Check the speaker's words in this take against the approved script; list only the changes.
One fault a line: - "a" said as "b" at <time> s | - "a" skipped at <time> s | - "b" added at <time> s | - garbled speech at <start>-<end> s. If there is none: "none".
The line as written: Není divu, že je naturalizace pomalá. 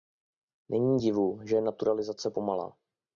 none